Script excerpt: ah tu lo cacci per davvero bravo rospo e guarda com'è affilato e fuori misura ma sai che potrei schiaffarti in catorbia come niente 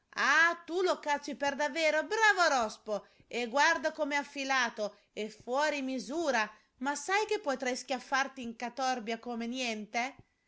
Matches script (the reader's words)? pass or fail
pass